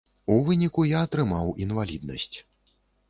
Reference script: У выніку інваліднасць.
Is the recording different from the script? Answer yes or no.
yes